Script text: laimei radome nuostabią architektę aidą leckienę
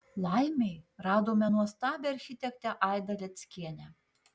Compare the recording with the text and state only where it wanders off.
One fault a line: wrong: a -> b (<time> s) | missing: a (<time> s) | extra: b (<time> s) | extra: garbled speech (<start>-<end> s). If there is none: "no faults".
no faults